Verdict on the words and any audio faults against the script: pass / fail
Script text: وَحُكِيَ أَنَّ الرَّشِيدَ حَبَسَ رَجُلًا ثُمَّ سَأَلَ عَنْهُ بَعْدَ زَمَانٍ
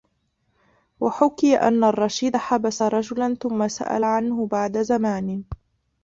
pass